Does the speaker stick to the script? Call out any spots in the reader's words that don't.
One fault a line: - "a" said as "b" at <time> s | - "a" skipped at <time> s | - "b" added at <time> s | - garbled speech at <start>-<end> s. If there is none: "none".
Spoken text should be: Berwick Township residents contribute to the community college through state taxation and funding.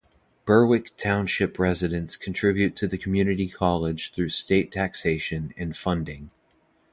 none